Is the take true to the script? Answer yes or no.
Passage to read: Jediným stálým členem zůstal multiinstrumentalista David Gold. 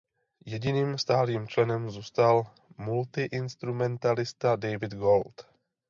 yes